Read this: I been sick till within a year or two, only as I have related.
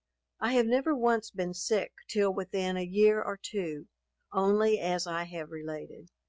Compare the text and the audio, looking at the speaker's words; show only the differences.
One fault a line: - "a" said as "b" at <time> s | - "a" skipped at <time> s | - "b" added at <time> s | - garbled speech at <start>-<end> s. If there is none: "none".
- "have never once" added at 0.5 s